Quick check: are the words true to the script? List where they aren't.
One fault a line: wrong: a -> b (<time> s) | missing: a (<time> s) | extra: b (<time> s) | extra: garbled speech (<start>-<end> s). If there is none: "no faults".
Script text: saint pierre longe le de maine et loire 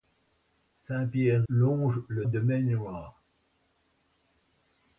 no faults